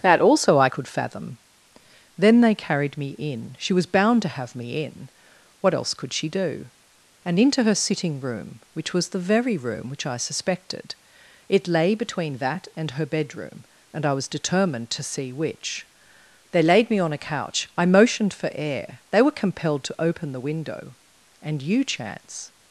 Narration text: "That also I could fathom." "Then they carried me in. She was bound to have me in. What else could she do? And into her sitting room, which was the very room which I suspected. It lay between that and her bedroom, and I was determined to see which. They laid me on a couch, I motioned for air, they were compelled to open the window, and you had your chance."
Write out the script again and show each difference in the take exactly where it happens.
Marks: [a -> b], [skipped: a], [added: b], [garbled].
"That also I could fathom." "Then they carried me in. She was bound to have me in. What else could she do? And into her sitting room, which was the very room which I suspected. It lay between that and her bedroom, and I was determined to see which. They laid me on a couch, I motioned for air, they were compelled to open the window, and you [skipped: had your] chance."